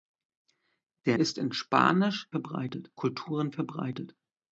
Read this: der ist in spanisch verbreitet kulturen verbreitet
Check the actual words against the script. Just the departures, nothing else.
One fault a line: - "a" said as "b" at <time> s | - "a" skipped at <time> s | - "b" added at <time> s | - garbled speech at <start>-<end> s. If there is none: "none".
none